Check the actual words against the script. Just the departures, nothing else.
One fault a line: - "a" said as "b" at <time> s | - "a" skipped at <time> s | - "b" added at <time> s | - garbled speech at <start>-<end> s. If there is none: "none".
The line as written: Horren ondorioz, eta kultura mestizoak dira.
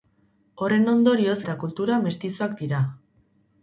none